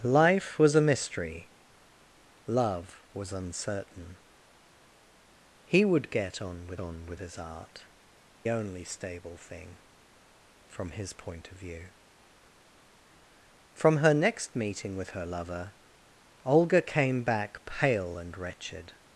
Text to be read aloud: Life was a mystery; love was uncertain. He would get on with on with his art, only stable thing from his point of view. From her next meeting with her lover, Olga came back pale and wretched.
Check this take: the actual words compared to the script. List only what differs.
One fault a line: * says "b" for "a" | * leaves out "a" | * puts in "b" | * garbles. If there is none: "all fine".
all fine